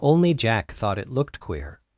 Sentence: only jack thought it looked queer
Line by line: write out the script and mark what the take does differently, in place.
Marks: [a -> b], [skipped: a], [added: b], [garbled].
only jack thought it looked queer